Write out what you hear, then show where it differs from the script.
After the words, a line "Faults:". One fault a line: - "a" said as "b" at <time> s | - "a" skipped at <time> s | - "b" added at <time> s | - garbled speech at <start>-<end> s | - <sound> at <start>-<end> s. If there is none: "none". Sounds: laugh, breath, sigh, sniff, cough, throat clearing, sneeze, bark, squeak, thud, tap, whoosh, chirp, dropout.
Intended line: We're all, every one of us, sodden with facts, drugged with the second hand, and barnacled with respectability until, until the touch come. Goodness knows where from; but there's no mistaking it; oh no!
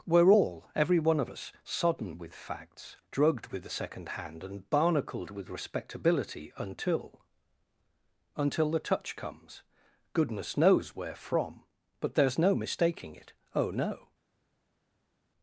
We're all, every one of us, sodden with facts, drugged with the second hand, and barnacled with respectability until, until the touch comes. Goodness knows where from; but there's no mistaking it; oh no!
Faults:
- "come" said as "comes" at 9.1 s